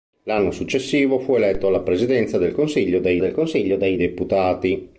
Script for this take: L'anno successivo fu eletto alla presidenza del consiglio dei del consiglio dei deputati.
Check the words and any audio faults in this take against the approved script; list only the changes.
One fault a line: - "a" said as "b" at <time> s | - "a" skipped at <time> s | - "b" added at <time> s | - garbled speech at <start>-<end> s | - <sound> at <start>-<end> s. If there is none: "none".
none